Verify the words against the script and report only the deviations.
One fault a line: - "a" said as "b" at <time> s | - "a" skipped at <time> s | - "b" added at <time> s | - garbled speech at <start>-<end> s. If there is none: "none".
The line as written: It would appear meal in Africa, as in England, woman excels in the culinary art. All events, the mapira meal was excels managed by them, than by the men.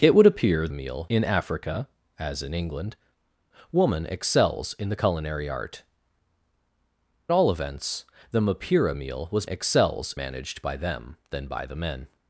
none